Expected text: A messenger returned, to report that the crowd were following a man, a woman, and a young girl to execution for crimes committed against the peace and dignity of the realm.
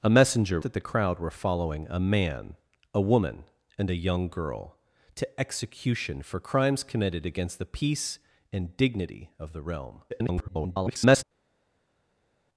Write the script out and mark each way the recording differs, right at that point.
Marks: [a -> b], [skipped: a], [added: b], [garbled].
A messenger [skipped: returned, to report] that the crowd were following a man, a woman, and a young girl to execution for crimes committed against the peace and dignity of the realm. [garbled]